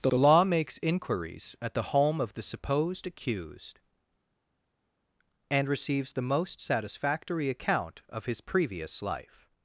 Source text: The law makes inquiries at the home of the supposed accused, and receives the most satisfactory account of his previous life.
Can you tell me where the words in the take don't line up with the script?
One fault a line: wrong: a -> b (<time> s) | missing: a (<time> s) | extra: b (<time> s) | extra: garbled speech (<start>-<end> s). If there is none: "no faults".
extra: the (0.1 s)